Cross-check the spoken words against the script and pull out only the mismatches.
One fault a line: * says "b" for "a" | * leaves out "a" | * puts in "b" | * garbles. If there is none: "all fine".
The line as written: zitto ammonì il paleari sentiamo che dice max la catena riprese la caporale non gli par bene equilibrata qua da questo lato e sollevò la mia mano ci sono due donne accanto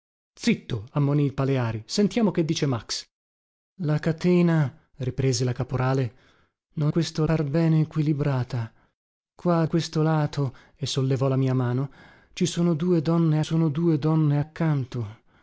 * says "questo" for "gli"
* leaves out "da"
* puts in "sono due donne"